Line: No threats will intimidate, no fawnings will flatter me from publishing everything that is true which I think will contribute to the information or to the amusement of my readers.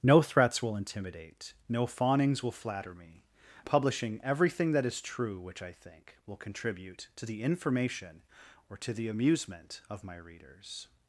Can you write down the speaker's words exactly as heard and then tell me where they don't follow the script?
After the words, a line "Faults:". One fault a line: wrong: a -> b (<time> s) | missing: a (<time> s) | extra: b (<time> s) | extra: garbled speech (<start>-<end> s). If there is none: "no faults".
No threats will intimidate, no fawnings will flatter me publishing everything that is true which I think will contribute to the information or to the amusement of my readers.
Faults:
missing: from (3.2 s)